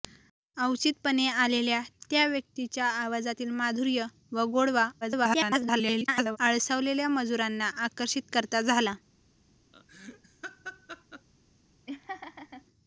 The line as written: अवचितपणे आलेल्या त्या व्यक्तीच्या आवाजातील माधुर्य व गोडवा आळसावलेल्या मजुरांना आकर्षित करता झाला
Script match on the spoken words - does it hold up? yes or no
no